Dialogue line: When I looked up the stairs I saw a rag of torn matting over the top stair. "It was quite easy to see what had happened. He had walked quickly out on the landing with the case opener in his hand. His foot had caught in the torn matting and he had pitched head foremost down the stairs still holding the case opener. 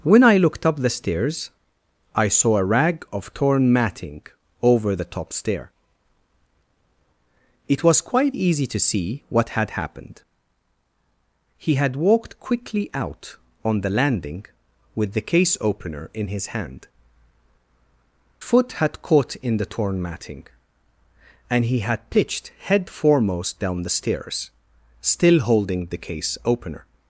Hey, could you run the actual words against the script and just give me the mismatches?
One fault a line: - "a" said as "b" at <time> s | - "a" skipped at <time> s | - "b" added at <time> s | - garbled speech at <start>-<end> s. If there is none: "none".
- "His" skipped at 16.9 s